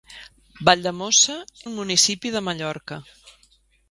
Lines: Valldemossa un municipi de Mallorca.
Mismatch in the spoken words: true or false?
false